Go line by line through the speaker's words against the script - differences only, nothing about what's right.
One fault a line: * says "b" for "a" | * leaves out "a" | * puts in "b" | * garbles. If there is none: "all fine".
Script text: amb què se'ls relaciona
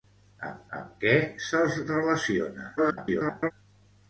* puts in "amb"
* garbles